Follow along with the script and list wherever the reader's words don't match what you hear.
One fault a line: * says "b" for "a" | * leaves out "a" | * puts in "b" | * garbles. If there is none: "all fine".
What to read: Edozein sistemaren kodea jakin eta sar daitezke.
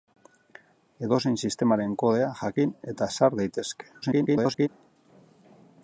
* garbles